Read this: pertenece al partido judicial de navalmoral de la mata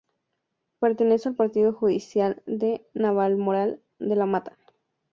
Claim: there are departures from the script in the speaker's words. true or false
false